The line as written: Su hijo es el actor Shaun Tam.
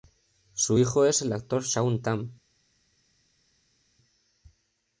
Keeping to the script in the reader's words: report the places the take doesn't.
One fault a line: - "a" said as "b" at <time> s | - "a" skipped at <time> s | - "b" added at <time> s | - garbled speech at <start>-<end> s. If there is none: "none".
none